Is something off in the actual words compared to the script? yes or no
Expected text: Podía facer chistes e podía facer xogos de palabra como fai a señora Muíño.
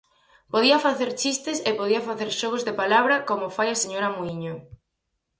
no